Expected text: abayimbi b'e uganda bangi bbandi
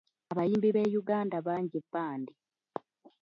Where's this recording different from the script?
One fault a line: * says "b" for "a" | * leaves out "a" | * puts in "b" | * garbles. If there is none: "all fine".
all fine